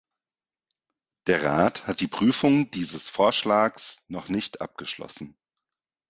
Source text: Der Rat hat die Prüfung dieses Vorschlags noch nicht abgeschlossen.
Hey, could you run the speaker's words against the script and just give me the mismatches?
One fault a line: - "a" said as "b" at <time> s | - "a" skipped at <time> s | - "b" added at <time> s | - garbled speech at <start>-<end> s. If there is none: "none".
none